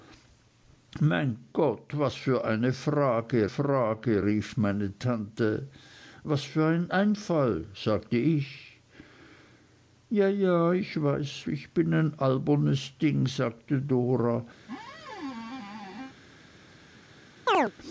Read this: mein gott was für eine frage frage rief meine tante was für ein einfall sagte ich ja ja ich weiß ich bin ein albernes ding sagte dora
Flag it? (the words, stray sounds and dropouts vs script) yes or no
yes